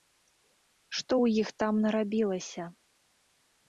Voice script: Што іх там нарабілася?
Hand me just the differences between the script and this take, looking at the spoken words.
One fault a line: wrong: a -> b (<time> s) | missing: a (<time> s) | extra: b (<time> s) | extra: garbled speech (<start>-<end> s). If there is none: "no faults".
extra: ў (1.2 s)